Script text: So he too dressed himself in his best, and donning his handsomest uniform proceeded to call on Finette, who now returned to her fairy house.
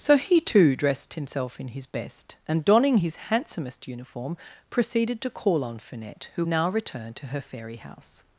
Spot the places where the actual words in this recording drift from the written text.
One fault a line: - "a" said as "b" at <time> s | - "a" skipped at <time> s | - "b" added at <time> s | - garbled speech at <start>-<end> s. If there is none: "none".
none